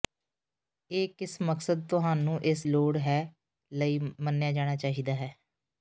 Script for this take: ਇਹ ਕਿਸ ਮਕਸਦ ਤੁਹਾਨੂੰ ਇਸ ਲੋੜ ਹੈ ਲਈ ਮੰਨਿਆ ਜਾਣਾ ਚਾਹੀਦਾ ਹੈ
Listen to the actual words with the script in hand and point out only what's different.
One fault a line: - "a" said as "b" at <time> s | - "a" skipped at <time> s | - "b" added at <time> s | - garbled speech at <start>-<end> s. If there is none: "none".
none